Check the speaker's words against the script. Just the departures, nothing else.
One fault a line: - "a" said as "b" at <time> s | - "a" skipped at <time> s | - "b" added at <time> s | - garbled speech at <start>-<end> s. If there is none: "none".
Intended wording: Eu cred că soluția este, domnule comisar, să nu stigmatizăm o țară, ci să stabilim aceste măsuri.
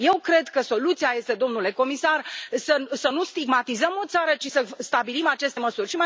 none